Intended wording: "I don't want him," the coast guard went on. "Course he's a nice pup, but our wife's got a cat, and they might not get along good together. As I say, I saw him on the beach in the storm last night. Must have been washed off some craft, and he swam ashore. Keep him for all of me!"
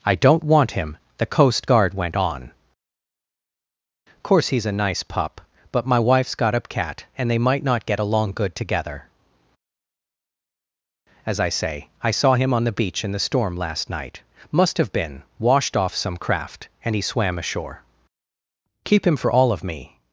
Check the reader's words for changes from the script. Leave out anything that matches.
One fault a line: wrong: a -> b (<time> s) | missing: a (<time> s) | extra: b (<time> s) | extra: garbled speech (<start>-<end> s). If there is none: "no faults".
wrong: our -> my (5.9 s)